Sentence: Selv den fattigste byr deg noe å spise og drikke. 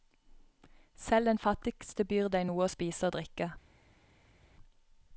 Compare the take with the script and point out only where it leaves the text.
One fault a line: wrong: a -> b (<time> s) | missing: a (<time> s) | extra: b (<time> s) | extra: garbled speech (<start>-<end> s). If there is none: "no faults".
no faults